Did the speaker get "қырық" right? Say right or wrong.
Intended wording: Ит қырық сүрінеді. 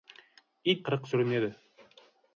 right